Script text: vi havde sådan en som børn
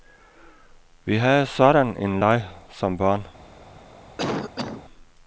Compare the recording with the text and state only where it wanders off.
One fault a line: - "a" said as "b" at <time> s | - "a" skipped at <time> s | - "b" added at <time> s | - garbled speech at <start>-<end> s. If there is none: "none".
- "leg" added at 2.2 s